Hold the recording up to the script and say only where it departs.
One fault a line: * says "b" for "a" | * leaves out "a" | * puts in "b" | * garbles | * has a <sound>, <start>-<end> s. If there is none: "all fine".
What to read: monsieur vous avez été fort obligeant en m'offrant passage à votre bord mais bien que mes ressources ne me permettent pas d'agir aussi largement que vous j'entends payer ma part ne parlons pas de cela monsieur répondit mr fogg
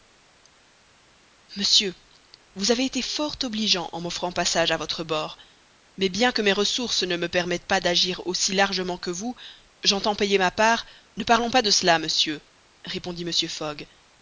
all fine